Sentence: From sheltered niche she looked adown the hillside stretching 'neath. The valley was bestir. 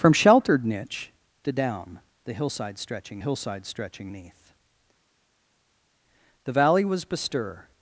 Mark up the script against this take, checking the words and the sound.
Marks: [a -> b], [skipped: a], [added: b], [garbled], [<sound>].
From sheltered niche [she looked adown the -> adown the hillside stretching] hillside stretching 'neath. The valley was bestir.